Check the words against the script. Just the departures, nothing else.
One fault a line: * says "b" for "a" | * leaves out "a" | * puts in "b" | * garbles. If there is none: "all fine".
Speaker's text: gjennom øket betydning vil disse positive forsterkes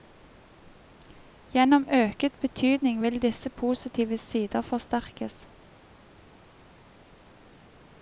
* puts in "sider"